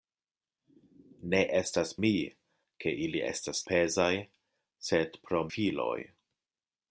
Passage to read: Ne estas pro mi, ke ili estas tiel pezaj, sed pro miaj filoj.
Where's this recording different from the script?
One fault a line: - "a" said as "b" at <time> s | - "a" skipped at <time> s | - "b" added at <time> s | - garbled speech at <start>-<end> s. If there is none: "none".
- "pro" skipped at 1.9 s
- "tiel" skipped at 3.6 s
- "miaj" skipped at 5.5 s